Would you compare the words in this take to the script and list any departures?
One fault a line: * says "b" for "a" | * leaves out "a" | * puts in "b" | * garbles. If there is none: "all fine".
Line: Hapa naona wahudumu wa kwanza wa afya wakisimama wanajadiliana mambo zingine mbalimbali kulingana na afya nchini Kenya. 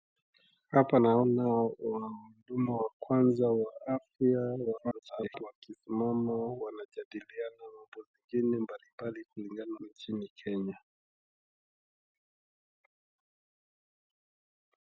* garbles
* leaves out "na afya"